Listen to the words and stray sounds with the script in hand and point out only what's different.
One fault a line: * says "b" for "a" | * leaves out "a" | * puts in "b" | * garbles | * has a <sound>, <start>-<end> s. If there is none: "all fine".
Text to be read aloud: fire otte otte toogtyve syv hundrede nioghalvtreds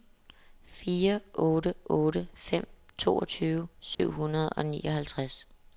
* puts in "fem"
* has a dropout, 3.9-4.0 s
* puts in "og"